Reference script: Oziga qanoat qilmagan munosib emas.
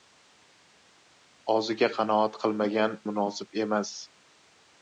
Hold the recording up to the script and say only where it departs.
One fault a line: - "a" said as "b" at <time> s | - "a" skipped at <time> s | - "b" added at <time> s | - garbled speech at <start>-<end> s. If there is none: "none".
none